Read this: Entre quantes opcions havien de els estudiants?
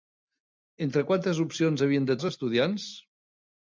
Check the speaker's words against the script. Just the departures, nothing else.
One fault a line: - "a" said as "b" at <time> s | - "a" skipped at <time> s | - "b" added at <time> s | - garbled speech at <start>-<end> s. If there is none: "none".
none